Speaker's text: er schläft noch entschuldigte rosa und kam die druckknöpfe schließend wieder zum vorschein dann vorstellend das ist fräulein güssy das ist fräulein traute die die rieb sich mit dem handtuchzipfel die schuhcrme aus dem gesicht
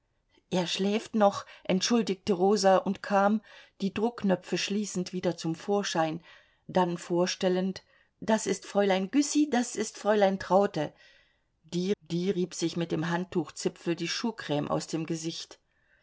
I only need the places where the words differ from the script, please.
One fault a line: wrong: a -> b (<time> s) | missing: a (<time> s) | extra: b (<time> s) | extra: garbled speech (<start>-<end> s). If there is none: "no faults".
no faults